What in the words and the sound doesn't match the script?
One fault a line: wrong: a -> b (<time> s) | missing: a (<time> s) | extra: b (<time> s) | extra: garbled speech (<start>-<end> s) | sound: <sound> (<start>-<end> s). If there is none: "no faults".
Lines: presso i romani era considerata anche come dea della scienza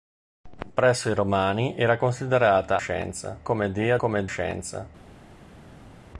wrong: anche -> scienza (2.8 s)
wrong: della -> come (4.0 s)